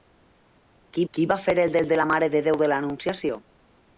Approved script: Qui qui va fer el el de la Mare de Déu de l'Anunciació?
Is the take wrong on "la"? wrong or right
right